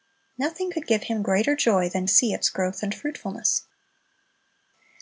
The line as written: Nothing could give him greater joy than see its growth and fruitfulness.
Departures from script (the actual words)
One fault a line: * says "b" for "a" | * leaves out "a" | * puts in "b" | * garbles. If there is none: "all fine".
all fine